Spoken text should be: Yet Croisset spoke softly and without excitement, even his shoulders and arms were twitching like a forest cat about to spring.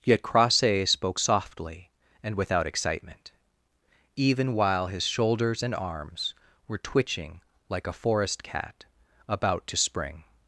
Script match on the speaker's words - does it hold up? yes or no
no